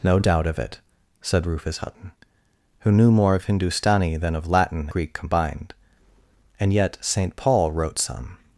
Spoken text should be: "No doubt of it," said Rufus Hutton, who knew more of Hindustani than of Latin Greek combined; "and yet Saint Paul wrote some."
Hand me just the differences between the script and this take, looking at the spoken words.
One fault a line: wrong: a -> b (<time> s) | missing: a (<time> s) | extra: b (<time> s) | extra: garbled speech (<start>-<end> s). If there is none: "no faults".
no faults